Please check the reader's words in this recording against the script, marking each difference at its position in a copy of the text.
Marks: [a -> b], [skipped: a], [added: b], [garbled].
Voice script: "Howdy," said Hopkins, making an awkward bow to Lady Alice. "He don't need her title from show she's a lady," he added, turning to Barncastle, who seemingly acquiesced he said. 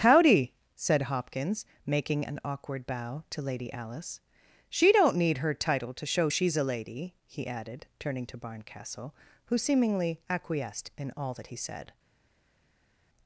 "Howdy," said Hopkins, making an awkward bow to Lady Alice. ["He -> She] don't need her title [from -> to] show she's a lady," he added, turning to Barncastle, who seemingly acquiesced [added: in all that] he said.